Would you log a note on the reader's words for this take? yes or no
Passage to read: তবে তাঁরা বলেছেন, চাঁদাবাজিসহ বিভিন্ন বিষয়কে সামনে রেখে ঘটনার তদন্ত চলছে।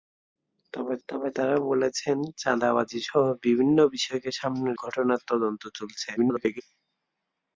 yes